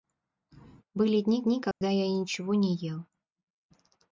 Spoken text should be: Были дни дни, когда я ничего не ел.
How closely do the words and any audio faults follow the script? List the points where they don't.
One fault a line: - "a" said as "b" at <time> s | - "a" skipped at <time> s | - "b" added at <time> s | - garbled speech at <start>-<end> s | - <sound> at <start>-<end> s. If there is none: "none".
- dropout at 1.7-1.8 s